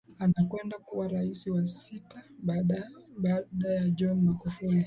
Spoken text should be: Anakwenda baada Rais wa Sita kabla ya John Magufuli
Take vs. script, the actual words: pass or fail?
fail